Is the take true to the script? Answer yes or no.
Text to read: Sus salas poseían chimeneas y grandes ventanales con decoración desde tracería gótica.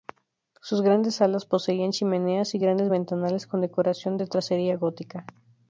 no